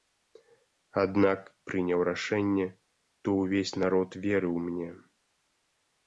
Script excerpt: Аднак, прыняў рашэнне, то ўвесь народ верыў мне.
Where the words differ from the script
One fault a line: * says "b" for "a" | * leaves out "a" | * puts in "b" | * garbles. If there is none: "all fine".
all fine